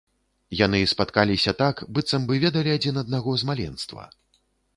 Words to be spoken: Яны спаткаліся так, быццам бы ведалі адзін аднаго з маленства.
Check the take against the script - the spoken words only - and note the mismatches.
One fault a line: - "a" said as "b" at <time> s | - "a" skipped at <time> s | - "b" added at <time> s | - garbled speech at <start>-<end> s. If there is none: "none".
none